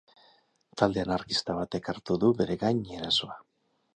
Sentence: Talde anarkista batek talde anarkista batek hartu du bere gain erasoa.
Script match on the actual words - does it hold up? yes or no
no